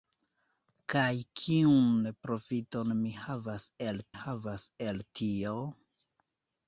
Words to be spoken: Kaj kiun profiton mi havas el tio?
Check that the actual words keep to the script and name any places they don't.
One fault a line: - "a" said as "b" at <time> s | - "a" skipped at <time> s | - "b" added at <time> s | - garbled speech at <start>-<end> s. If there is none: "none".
- "havas el" added at 4.2 s